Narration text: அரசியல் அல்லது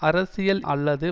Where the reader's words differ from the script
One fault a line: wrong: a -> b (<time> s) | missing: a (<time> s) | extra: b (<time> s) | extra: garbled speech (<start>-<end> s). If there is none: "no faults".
no faults